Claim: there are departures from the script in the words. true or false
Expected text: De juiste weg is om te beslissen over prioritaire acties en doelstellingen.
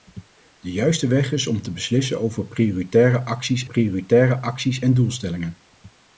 true